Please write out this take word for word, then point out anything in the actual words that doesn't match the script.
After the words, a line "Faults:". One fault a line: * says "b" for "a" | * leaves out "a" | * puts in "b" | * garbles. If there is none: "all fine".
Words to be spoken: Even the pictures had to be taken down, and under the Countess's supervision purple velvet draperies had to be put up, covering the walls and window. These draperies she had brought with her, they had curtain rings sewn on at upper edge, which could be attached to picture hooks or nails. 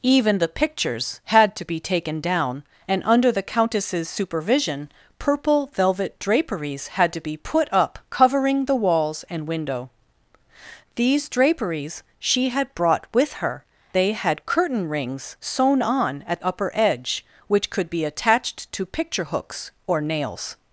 Even the pictures had to be taken down, and under the Countess's supervision purple velvet draperies had to be put up, covering the walls and window. These draperies she had brought with her, they had curtain rings sewn on at upper edge, which could be attached to picture hooks or nails.
Faults:
all fine